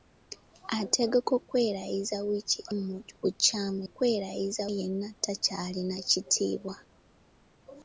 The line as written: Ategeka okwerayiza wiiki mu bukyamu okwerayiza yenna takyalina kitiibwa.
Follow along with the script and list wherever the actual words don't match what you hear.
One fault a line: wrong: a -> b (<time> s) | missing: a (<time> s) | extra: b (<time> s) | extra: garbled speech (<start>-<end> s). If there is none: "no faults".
no faults